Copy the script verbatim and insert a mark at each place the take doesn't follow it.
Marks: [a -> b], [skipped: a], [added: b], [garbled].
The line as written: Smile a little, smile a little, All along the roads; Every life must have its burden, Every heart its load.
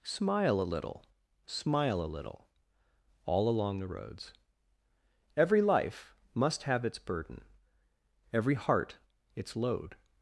Smile a little, smile a little, All along the roads; Every life must have its burden, Every heart its load.